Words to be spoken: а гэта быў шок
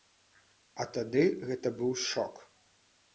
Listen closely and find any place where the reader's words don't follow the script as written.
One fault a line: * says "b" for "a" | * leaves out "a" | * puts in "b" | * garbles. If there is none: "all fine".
* puts in "тады"